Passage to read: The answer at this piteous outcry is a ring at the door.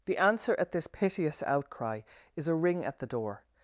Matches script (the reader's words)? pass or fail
pass